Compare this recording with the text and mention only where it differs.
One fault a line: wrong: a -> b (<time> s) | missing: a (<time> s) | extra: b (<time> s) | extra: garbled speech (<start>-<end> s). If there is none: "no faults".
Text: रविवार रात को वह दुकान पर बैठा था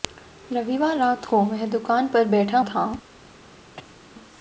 no faults